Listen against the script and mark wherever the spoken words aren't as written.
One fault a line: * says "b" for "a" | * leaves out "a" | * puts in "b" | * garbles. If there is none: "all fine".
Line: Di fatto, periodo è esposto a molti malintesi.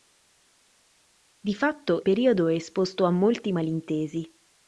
all fine